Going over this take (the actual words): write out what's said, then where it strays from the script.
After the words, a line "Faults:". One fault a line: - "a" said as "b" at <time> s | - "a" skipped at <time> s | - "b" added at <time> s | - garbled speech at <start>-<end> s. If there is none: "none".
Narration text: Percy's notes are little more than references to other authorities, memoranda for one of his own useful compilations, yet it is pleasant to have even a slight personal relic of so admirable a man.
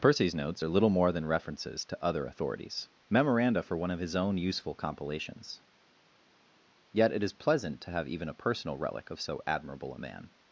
Percy's notes are little more than references to other authorities, memoranda for one of his own useful compilations, yet it is pleasant to have even a personal relic of so admirable a man.
Faults:
- "slight" skipped at 8.3 s